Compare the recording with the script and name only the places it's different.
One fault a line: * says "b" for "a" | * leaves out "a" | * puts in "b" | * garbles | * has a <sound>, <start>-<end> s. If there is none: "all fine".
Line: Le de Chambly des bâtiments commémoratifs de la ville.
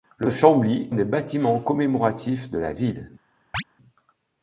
* has a chirp, 3.5-3.6 s